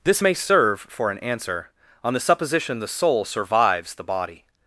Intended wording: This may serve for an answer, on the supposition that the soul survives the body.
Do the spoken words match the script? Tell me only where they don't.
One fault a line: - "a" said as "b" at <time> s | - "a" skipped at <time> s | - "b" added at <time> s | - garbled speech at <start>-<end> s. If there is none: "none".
- "that" skipped at 2.8 s